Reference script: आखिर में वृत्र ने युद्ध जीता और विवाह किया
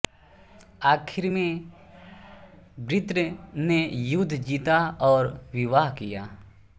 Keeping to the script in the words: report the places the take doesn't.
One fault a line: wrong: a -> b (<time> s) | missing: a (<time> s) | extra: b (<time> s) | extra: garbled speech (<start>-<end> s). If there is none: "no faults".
no faults